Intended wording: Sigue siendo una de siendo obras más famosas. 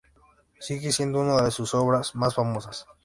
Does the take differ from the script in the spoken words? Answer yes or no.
yes